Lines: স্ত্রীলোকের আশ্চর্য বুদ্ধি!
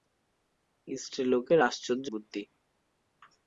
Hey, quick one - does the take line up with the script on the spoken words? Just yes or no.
yes